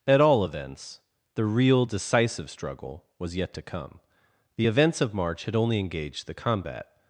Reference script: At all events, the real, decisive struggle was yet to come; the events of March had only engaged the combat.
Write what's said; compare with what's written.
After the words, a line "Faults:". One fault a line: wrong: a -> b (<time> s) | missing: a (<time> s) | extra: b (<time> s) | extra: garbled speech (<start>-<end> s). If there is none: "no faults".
At all events, the real, decisive struggle was yet to come; the events of March had only engaged the combat.
Faults:
no faults